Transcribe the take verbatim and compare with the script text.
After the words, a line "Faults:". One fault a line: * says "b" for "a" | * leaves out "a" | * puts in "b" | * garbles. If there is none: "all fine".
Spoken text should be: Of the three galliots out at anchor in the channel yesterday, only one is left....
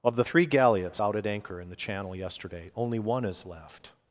Of the three galliots out at anchor in the channel yesterday, only one is left....
Faults:
all fine